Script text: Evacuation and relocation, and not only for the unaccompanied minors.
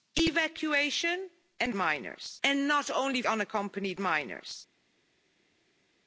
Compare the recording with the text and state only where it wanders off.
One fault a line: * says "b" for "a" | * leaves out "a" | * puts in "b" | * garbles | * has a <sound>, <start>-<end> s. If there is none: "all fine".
* says "minors" for "relocation"
* leaves out "for the"